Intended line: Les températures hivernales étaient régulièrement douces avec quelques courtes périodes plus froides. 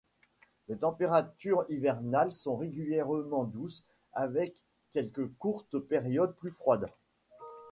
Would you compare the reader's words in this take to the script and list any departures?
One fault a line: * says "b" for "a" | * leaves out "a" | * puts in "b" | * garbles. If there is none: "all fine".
* says "sont" for "étaient"